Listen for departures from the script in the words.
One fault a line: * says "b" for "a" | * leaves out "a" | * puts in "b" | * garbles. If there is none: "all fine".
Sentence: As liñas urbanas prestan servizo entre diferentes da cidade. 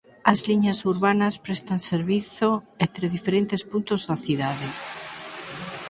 * puts in "puntos"